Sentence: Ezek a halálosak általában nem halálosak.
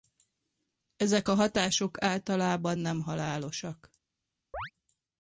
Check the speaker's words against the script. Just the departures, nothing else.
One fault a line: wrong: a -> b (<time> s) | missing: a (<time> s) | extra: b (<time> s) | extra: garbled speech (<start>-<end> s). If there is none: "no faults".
wrong: halálosak -> hatások (1.3 s)